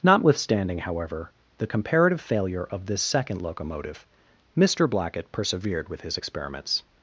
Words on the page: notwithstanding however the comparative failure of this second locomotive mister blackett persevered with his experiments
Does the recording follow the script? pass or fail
pass